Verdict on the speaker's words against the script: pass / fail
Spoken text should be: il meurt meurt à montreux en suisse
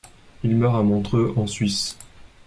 fail